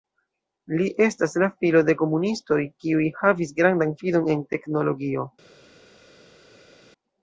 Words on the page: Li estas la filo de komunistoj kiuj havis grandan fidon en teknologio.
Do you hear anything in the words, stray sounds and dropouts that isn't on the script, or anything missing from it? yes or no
no